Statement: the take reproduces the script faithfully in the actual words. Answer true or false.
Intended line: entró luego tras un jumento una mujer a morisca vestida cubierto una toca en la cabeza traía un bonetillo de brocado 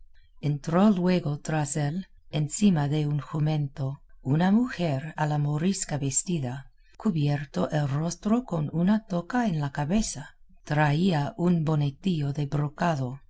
false